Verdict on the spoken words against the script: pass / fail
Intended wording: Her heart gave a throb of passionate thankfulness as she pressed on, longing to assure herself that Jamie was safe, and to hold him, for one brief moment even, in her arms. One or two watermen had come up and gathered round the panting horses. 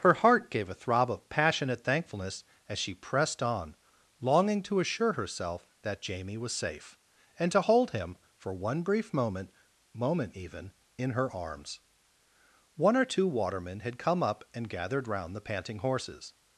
fail